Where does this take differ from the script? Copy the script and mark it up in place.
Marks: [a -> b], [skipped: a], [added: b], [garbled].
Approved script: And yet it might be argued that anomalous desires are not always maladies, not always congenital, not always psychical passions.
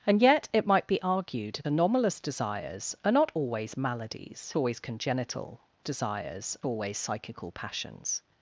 And yet it might be argued [skipped: that] anomalous desires are not always maladies, [skipped: not] always congenital, [not -> desires] always psychical passions.